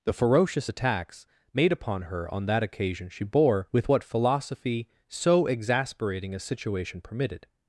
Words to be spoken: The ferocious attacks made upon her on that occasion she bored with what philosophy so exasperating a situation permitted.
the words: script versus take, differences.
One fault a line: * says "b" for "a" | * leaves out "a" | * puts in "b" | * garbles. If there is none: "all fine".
* says "bore" for "bored"